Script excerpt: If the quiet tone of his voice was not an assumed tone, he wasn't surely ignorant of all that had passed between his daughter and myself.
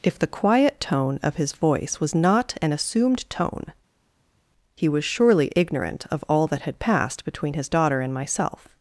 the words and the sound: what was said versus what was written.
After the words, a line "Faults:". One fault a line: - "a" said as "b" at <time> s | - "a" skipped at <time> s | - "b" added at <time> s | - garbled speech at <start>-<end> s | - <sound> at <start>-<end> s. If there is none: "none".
If the quiet tone of his voice was not an assumed tone, he was surely ignorant of all that had passed between his daughter and myself.
Faults:
- "wasn't" said as "was" at 4.9 s